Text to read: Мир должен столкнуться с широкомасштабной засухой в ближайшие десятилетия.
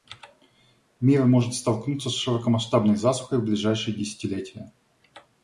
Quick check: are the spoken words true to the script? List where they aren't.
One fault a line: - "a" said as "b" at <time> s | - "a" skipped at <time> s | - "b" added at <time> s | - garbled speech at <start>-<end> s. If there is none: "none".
- "должен" said as "может" at 1.2 s